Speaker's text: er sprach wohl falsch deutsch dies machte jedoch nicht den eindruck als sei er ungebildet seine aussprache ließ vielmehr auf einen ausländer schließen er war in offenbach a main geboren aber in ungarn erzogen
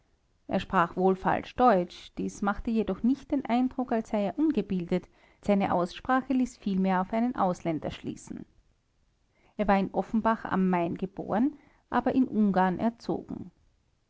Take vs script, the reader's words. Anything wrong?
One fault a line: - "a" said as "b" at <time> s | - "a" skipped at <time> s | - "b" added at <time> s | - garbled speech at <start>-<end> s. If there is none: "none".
none